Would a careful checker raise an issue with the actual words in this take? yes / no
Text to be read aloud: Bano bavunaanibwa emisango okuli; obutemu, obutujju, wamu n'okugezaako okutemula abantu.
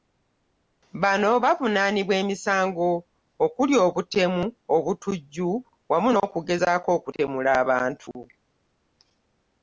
no